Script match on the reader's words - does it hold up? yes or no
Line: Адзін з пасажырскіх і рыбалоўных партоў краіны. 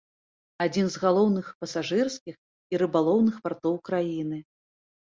no